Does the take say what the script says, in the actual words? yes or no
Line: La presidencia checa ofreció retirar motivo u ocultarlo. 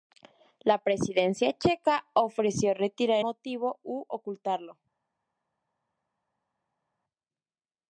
yes